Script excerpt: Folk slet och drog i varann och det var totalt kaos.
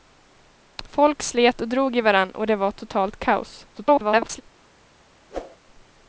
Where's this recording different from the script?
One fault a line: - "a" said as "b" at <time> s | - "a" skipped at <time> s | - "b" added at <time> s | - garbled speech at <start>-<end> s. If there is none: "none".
- garbled speech at 3.7-4.4 s